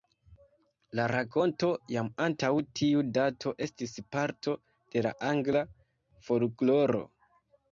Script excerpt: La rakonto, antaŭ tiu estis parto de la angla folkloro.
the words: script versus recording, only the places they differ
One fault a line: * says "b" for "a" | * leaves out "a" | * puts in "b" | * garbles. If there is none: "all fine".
* puts in "jam"
* puts in "dato"